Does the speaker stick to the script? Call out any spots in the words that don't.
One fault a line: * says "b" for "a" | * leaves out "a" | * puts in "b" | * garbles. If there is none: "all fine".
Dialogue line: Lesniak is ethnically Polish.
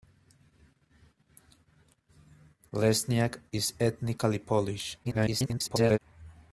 * garbles